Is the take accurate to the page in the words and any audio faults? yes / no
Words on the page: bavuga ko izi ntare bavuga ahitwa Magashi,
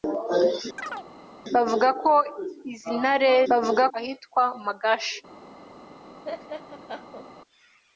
no